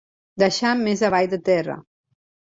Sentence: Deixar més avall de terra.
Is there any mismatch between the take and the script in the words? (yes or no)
no